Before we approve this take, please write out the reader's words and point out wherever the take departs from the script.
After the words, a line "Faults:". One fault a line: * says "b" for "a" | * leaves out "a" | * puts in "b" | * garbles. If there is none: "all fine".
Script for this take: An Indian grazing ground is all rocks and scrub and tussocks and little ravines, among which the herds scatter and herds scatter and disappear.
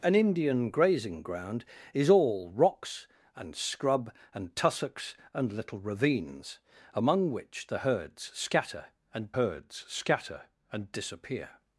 An Indian grazing ground is all rocks and scrub and tussocks and little ravines, among which the herds scatter and herds scatter and disappear.
Faults:
all fine